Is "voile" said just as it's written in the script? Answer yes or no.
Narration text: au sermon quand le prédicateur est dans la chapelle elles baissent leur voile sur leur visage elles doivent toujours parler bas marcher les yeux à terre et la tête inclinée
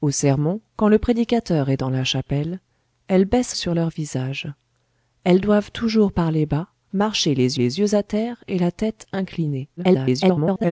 no